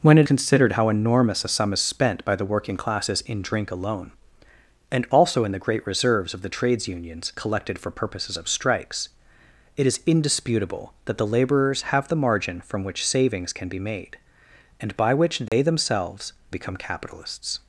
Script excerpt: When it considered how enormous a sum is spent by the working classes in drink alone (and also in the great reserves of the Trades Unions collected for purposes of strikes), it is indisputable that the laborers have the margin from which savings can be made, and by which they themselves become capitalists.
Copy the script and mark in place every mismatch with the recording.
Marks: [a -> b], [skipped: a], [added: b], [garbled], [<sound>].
When it considered how enormous a sum is spent by the working classes in drink alone (and also in the great reserves of the Trades Unions collected for purposes of strikes), it is indisputable that the laborers have the margin from which savings can be made, and by which they [dropout] themselves become capitalists.